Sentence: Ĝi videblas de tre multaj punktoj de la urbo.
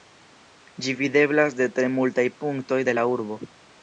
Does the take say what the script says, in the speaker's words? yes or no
yes